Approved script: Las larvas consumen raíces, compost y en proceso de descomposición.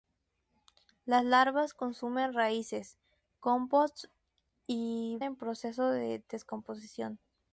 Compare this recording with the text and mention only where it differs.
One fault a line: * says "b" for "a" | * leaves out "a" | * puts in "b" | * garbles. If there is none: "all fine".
all fine